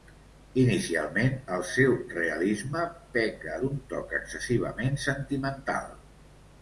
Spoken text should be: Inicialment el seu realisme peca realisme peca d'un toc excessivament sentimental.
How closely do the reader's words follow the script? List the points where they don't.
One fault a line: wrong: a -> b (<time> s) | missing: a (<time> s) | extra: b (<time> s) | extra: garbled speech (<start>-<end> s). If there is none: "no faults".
missing: realisme peca (3.6 s)